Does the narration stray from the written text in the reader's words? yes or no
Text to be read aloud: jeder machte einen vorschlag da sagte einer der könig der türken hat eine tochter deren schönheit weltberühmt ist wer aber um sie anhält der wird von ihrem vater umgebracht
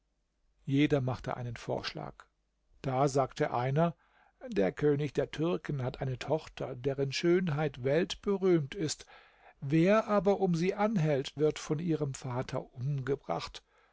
yes